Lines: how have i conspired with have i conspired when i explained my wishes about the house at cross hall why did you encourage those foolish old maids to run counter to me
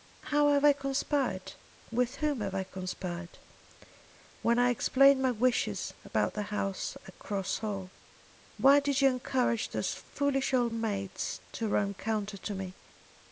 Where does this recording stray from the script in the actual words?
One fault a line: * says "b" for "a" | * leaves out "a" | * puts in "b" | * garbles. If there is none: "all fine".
* puts in "whom"